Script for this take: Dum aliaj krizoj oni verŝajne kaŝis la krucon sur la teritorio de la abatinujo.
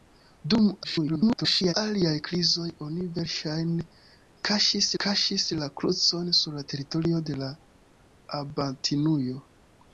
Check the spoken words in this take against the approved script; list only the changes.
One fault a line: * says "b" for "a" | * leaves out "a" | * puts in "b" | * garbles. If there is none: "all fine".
* garbles
* puts in "kaŝis"